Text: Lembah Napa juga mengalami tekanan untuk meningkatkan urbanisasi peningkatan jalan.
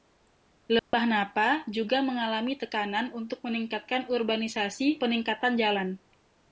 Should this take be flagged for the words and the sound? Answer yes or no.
yes